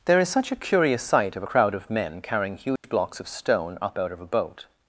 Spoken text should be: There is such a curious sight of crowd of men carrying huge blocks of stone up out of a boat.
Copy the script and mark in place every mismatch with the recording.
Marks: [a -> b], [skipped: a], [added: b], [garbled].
There is such a curious sight of crowd of men carrying huge blocks of stone up out of a boat.